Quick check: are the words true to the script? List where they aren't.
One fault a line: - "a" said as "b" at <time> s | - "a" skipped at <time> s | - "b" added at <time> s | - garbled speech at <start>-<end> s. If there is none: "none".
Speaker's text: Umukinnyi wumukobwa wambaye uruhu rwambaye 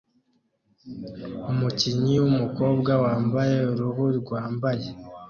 none